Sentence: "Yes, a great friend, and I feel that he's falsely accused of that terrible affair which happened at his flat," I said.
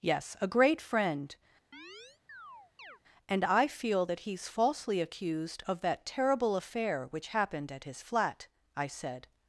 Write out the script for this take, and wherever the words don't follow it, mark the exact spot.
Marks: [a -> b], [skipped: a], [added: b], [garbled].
"Yes, a great friend, and I feel that he's falsely accused of that terrible affair which happened at his flat," I said.